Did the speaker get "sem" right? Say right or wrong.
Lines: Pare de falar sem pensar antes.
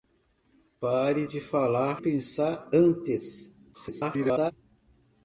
wrong